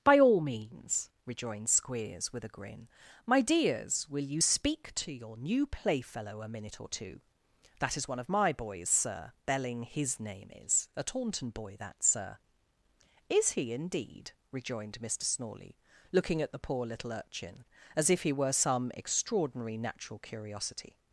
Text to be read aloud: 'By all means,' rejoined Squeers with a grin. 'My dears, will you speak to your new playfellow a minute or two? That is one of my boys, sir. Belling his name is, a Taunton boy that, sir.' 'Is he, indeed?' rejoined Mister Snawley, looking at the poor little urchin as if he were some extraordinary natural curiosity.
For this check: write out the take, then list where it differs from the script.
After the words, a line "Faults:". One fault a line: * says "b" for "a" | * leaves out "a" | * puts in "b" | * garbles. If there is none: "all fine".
'By all means,' rejoined Squeers with a grin. 'My dears, will you speak to your new playfellow a minute or two? That is one of my boys, sir. Belling his name is, a Taunton boy that, sir.' 'Is he, indeed?' rejoined Mister Snawley, looking at the poor little urchin as if he were some extraordinary natural curiosity.
Faults:
all fine